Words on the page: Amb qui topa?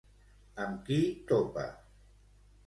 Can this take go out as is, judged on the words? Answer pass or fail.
pass